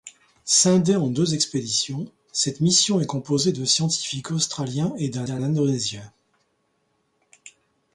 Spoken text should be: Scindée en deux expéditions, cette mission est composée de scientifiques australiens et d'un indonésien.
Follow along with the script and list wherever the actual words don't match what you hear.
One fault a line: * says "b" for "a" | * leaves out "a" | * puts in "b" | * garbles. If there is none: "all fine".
* puts in "d'un"